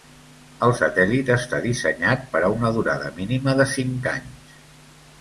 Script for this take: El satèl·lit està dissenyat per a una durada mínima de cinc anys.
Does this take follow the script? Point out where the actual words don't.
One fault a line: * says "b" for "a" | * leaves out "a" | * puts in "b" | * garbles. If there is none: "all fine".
all fine